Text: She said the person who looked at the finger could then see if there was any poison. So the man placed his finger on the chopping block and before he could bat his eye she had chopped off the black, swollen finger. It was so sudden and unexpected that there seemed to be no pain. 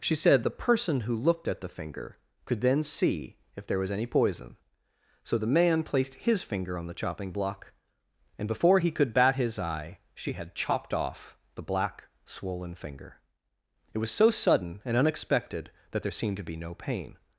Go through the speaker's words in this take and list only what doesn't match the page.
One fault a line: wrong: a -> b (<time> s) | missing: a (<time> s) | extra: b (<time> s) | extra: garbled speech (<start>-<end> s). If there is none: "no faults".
no faults